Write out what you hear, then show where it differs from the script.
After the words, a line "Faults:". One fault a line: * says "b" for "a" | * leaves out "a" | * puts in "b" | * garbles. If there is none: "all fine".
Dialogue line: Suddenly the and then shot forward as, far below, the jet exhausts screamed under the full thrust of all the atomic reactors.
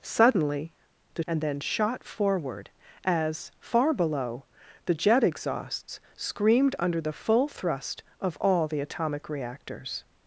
Suddenly the and then shot forward as, far below, the jet exhausts screamed under the full thrust of all the atomic reactors.
Faults:
all fine